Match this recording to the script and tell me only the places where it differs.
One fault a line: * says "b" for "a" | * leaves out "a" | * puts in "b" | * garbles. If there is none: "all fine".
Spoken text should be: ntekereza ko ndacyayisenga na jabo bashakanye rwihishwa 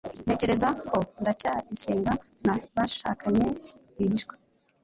* leaves out "jabo"